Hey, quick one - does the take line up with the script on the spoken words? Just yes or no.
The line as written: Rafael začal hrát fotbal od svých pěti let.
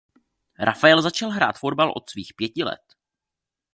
yes